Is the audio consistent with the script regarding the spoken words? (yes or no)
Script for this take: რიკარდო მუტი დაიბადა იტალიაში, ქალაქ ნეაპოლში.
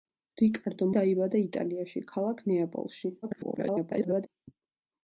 no